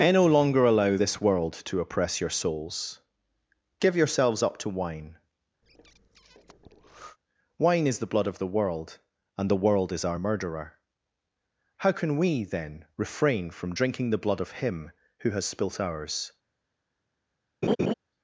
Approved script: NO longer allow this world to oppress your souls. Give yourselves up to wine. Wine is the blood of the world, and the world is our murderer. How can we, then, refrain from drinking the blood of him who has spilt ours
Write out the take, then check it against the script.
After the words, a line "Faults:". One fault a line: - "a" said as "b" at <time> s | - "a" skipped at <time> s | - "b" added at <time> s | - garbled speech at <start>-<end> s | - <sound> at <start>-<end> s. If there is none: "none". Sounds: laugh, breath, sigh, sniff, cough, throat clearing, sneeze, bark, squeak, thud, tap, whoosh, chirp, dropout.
and NO longer allow this world to oppress your souls. Give yourselves up to wine. Wine is the blood of the world, and the world is our murderer. How can we, then, refrain from drinking the blood of him who has spilt ours
Faults:
- "and" added at 0.0 s
- breath at 5.6-7.2 s
- laugh at 17.6-17.9 s